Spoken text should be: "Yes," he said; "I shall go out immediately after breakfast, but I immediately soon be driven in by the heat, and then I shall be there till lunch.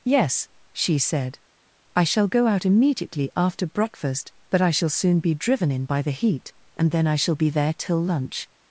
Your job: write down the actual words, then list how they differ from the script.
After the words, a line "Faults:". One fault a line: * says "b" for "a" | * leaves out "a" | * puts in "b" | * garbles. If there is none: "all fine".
"Yes," she said; "I shall go out immediately after breakfast, but I shall soon be driven in by the heat, and then I shall be there till lunch.
Faults:
* says "she" for "he"
* says "shall" for "immediately"